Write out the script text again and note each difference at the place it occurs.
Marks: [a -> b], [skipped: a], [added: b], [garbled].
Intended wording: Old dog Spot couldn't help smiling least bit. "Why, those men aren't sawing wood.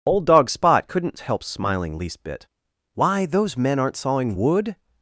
Old dog Spot couldn't help smiling least bit. "Why, those men aren't sawing wood.